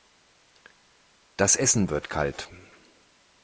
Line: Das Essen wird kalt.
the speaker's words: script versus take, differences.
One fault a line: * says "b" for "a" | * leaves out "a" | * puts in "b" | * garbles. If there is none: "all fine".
all fine